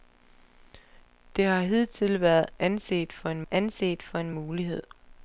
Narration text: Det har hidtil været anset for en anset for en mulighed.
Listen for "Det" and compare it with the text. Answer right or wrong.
right